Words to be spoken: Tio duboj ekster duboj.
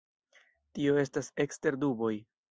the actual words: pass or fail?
fail